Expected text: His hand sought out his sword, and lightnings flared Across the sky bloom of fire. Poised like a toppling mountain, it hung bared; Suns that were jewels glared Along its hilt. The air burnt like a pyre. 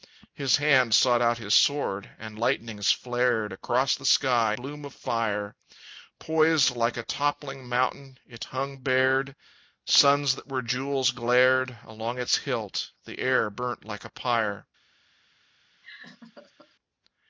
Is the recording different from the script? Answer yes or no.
no